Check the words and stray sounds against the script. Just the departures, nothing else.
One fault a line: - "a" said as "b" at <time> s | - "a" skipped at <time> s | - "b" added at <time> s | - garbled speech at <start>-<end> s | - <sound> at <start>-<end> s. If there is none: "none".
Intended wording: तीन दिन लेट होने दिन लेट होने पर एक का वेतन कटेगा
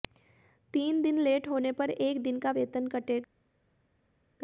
- "दिन लेट होने" skipped at 1.7 s
- "दिन" added at 2.2 s